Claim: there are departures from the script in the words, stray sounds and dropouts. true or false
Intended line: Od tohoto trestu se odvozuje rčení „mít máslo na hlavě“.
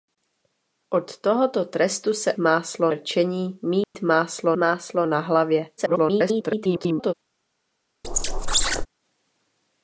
true